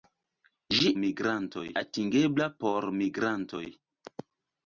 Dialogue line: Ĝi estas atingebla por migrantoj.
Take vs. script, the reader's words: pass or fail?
fail